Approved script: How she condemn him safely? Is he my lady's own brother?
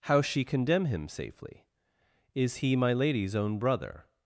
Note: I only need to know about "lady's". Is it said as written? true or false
true